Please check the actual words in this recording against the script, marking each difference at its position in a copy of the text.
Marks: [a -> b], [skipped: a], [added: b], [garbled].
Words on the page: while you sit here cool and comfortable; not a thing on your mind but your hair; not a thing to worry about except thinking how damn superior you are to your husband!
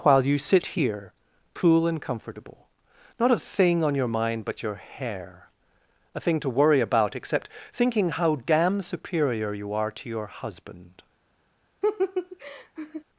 while you sit here cool and comfortable; not a thing on your mind but your hair; [skipped: not] a thing to worry about except thinking how damn superior you are to your husband!